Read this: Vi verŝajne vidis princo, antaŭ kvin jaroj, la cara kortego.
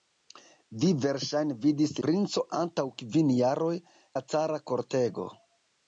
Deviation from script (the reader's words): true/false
false